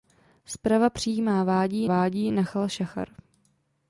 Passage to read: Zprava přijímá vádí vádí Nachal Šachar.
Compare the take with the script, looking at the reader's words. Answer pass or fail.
pass